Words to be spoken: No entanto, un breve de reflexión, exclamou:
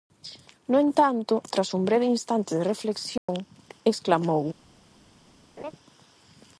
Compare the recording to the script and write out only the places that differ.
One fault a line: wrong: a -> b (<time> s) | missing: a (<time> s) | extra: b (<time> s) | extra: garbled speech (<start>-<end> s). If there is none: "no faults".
extra: tras (1.5 s)
extra: instante (2.2 s)